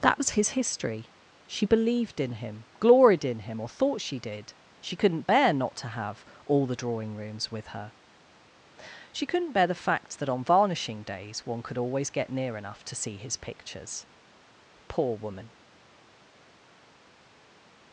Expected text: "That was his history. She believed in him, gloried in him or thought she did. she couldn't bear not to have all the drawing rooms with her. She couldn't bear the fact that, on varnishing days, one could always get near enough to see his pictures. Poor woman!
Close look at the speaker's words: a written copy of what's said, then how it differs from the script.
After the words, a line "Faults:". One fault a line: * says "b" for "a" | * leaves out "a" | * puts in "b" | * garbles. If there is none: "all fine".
"That was his history. She believed in him, gloried in him or thought she did. she couldn't bear not to have all the drawing rooms with her. She couldn't bear the fact that, on varnishing days, one could always get near enough to see his pictures. Poor woman!
Faults:
all fine